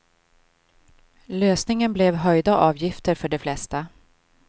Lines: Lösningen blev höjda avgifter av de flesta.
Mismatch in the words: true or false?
true